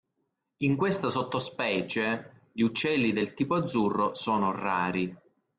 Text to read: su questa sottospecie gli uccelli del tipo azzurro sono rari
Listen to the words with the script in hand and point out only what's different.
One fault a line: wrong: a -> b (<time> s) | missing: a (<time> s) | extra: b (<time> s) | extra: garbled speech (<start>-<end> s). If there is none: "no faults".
wrong: su -> in (0.6 s)